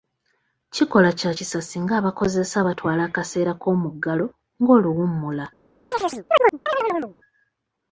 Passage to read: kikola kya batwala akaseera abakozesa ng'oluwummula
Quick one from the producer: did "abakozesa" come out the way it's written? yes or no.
no